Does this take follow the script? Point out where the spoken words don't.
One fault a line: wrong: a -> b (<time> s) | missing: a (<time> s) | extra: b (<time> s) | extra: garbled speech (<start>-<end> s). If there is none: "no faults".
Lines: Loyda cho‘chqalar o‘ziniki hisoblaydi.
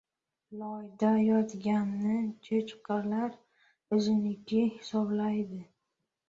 extra: yotganni (1.2 s)